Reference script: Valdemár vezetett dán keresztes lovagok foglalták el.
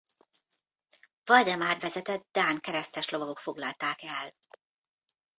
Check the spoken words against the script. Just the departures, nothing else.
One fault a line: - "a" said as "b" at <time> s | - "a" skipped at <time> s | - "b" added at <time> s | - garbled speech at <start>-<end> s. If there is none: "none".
none